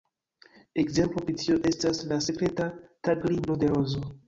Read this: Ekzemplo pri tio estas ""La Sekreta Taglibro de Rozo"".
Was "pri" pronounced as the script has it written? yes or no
yes